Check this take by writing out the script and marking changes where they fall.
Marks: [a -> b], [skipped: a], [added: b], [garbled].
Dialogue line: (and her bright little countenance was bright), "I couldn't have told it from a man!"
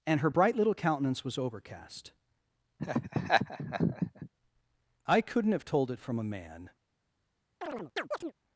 (and her bright little countenance was [bright), -> overcast] "I couldn't have told it from a man!"